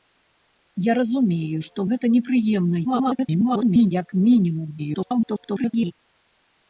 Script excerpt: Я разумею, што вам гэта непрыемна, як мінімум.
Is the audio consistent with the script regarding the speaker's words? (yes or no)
no